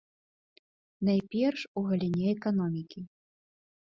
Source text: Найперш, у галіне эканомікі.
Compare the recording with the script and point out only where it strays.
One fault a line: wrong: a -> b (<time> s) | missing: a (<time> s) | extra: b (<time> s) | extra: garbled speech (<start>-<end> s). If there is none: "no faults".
no faults